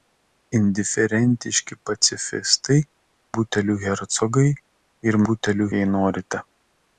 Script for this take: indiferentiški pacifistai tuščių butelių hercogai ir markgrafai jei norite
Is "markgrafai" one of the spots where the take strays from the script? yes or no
yes